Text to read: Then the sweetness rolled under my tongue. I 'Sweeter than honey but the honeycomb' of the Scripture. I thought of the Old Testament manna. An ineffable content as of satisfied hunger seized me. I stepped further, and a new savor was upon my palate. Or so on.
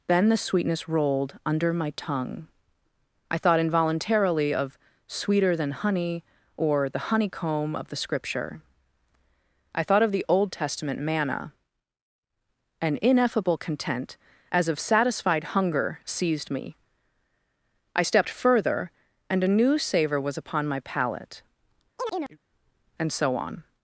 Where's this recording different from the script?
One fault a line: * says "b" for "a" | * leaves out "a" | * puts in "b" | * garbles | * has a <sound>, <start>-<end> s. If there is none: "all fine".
* puts in "thought involuntarily of"
* says "or" for "but"
* has a chirp, 22.0-22.4 s
* says "And" for "Or"